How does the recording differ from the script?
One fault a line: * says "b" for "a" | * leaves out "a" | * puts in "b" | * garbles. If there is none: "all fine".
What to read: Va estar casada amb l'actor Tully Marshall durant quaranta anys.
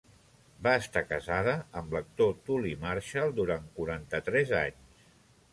* puts in "tres"